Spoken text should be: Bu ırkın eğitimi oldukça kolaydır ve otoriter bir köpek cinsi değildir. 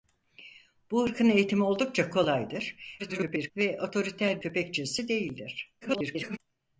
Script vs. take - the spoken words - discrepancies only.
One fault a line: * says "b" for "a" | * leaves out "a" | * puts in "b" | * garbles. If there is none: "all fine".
* garbles
* leaves out "bir"
* garbles